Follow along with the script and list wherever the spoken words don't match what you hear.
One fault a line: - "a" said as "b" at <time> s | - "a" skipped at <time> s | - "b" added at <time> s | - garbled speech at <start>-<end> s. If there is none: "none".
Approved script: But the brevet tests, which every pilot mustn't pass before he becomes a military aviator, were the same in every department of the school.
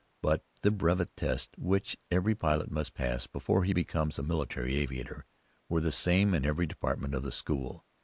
- "mustn't" said as "must" at 2.7 s